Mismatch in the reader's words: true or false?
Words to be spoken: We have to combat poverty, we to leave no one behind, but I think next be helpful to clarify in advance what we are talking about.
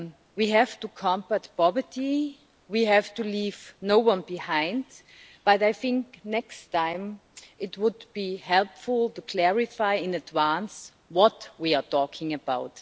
true